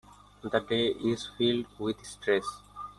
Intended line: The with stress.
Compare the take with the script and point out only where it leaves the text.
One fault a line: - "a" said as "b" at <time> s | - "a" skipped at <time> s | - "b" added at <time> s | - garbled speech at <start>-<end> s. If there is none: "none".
- "day is filled" added at 0.6 s